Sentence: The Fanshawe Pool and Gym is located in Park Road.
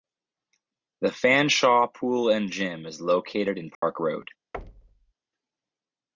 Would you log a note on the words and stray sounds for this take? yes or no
yes